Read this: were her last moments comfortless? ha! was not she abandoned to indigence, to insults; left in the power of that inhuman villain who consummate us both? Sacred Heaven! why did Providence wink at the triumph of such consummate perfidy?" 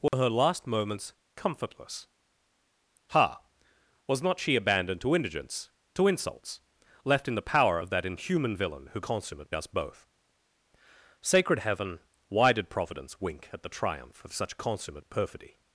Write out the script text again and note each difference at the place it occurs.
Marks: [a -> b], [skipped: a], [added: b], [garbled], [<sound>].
were [dropout] her last moments comfortless? ha! was not she abandoned to indigence, to insults; left in the power of that inhuman villain who consummate us both? Sacred Heaven! why did Providence wink at the triumph of such consummate perfidy?"